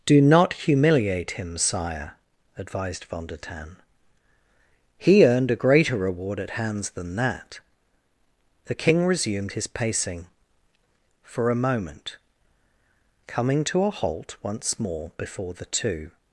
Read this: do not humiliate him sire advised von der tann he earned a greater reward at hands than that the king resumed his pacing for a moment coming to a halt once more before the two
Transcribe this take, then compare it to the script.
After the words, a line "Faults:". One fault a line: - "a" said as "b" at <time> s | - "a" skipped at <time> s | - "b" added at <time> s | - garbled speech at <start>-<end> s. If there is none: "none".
do not humiliate him sire advised von der tann he earned a greater reward at hands than that the king resumed his pacing for a moment coming to a halt once more before the two
Faults:
none